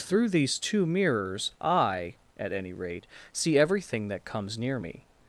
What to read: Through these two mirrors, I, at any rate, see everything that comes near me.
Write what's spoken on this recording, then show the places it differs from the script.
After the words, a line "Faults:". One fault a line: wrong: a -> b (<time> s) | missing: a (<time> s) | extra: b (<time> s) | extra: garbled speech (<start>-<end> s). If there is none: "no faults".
Through these two mirrors, I, at any rate, see everything that comes near me.
Faults:
no faults